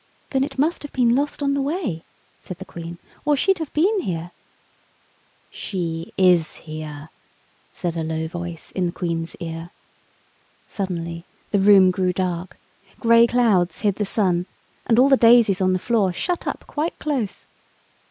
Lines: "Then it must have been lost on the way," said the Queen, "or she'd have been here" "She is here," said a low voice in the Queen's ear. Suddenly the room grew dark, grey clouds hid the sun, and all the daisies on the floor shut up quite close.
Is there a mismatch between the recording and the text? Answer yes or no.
no